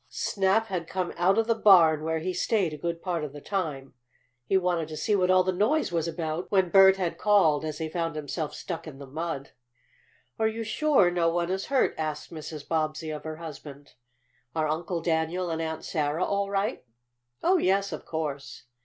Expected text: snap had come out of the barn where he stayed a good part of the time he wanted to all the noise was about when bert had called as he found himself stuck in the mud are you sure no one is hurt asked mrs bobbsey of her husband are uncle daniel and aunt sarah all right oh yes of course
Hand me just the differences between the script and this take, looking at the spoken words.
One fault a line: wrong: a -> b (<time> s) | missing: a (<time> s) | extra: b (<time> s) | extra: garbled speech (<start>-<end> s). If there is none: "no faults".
extra: see what (5.0 s)